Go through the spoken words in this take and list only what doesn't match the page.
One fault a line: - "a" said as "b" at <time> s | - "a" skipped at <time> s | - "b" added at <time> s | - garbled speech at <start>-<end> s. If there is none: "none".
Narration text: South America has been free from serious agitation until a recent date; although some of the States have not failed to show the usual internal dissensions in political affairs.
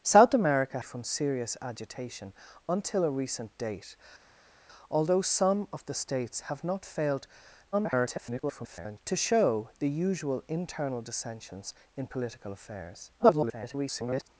- "has been free" skipped at 0.8 s
- garbled speech at 7.7-9.0 s
- garbled speech at 13.2-14.3 s